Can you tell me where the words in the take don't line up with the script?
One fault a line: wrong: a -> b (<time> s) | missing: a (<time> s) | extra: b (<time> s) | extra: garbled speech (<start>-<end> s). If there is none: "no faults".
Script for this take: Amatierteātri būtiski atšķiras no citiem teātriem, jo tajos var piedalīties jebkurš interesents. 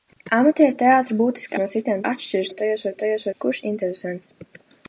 missing: atšķiras (1.6 s)
wrong: teātriem -> atšķiras (2.1 s)
wrong: piedalīties -> tajos (3.0 s)